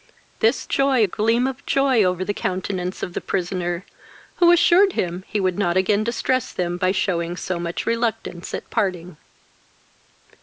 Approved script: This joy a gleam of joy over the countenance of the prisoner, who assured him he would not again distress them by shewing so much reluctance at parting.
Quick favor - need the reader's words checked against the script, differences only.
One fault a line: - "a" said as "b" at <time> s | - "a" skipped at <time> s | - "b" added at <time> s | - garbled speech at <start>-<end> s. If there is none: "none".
none